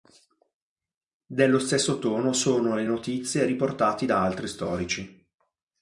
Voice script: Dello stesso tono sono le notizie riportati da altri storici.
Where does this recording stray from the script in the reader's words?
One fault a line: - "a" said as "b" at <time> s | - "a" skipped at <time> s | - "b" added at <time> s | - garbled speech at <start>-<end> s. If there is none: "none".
none